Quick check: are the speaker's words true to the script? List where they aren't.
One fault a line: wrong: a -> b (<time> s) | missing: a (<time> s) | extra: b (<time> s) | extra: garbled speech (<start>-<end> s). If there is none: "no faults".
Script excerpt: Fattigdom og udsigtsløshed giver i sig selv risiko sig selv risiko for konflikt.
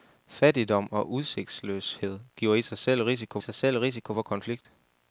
no faults